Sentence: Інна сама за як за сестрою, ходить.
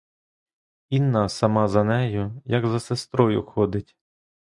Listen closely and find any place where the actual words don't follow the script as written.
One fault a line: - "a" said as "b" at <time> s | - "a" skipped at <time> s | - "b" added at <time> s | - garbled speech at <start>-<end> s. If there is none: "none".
- "нею" added at 1.8 s